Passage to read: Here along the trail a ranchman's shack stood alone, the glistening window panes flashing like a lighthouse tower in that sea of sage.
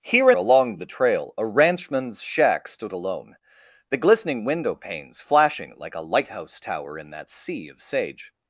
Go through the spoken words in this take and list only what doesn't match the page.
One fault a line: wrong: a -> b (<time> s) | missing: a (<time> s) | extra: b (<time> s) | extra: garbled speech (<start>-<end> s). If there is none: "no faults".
no faults